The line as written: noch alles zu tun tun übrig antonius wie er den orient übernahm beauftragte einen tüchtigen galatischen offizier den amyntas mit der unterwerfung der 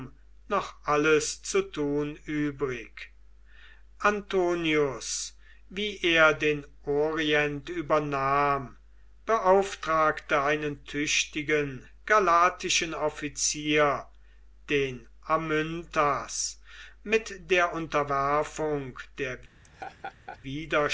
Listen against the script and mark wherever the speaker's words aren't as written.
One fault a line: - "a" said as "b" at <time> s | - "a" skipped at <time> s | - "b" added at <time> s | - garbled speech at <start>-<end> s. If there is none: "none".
- "tun" skipped at 2.1 s